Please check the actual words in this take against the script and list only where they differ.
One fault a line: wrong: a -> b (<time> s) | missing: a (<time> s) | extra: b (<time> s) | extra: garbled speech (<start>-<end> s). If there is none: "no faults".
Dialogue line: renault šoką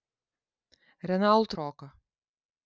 no faults